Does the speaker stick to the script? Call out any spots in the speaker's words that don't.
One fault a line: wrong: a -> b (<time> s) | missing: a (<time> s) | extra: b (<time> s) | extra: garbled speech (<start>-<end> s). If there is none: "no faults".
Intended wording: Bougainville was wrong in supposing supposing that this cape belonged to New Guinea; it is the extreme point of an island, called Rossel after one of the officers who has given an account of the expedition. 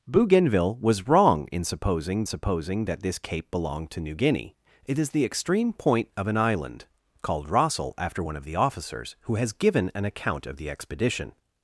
no faults